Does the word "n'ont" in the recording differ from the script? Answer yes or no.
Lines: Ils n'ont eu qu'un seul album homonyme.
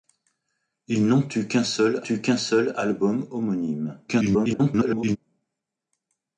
no